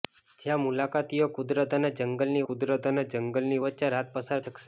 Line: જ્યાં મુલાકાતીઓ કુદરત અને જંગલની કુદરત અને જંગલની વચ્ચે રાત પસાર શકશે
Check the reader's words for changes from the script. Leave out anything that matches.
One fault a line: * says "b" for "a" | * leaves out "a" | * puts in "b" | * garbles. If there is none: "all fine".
all fine